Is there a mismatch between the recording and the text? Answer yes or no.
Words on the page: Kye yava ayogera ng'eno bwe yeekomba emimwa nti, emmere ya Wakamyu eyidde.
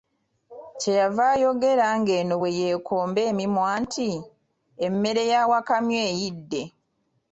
no